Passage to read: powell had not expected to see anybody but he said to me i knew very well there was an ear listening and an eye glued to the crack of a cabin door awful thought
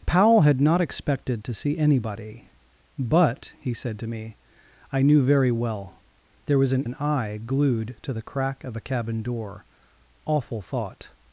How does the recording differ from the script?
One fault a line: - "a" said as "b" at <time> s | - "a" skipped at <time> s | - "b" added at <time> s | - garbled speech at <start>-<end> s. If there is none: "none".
- "ear listening and" skipped at 6.9 s